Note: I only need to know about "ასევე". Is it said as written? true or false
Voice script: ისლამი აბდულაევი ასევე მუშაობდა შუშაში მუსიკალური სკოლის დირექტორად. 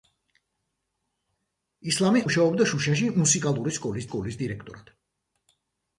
false